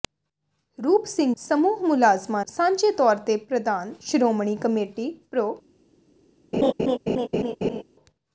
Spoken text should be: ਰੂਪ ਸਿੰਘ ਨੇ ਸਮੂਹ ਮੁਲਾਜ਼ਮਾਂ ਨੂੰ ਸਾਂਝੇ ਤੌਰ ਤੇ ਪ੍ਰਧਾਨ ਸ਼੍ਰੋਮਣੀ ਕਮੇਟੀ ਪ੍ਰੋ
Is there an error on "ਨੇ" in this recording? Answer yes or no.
yes